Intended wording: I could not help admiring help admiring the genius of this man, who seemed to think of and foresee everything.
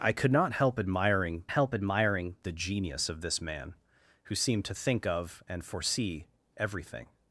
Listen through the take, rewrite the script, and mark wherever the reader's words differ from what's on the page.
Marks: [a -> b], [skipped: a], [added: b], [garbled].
I could not help admiring help admiring the genius of this man, who seemed to think of and foresee everything.